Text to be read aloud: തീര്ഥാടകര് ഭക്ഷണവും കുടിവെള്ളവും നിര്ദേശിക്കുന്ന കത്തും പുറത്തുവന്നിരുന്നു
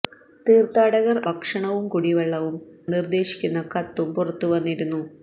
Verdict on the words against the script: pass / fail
pass